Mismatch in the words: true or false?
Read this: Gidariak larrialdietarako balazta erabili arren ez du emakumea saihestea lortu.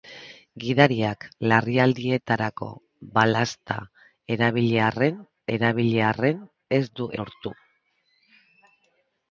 true